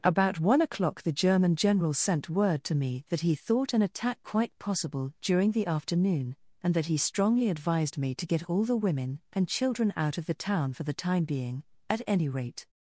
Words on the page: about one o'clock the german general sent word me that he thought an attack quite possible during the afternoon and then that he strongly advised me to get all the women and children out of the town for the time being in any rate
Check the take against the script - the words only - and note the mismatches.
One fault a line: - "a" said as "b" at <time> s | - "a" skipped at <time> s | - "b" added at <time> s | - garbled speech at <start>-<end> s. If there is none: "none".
- "to" added at 2.6 s
- "then" skipped at 6.7 s
- "in" said as "at" at 11.9 s